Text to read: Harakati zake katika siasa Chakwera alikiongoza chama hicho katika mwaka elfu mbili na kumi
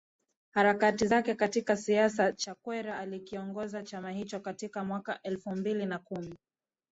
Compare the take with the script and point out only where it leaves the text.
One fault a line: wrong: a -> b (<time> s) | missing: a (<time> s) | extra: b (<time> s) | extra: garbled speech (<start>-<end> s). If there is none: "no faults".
no faults